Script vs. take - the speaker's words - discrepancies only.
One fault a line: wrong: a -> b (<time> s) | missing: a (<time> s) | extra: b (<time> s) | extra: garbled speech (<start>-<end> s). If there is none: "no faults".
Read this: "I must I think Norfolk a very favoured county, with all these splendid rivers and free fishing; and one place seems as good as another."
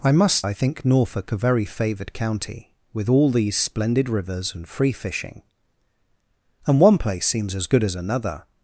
no faults